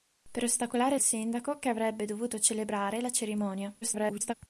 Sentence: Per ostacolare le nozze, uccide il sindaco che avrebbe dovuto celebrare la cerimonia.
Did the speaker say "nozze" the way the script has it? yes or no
no